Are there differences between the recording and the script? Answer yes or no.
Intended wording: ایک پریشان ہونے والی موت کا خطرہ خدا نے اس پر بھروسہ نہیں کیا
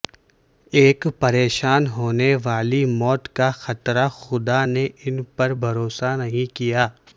yes